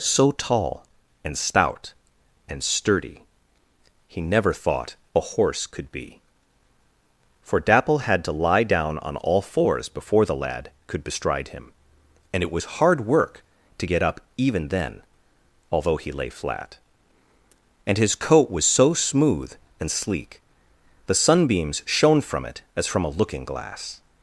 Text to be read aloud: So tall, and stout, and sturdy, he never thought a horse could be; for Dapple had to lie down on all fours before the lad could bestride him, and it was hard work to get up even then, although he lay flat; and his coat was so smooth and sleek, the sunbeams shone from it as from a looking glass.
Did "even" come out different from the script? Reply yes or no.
no